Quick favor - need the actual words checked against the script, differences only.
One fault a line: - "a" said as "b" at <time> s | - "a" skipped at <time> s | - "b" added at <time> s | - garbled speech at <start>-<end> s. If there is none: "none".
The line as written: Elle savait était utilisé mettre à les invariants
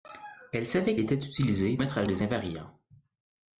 none